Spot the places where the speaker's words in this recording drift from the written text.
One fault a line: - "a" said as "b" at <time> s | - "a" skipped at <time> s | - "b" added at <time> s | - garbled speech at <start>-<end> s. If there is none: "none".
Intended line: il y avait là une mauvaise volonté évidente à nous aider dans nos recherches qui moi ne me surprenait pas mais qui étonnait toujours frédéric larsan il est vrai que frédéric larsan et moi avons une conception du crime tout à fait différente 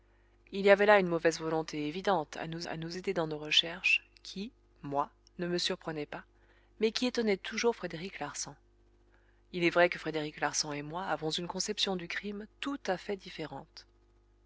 - "à nous" added at 2.7 s